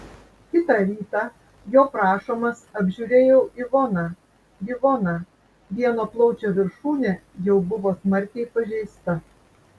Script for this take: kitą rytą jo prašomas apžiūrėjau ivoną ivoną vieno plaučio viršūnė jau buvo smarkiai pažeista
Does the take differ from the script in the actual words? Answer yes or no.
no